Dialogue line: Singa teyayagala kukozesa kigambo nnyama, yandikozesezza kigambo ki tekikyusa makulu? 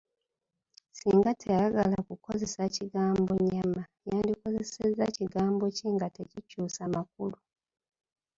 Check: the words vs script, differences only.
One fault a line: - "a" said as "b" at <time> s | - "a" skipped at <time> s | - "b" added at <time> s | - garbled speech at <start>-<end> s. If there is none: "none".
- "nga" added at 5.9 s